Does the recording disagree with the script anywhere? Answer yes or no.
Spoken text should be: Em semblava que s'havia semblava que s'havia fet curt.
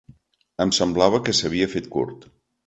yes